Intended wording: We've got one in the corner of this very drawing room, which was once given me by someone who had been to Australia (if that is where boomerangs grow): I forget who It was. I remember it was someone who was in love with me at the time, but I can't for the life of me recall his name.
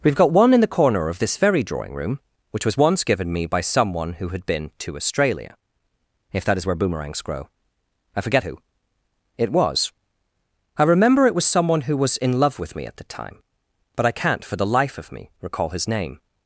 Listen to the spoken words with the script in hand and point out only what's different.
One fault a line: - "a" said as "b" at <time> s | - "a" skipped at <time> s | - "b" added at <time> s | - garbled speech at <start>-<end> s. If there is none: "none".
none